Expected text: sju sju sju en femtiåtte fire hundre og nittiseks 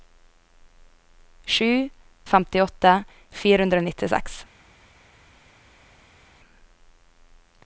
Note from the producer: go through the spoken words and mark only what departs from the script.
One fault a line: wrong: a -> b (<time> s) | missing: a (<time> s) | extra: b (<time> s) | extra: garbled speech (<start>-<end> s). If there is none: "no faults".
missing: sju sju en (1.9 s)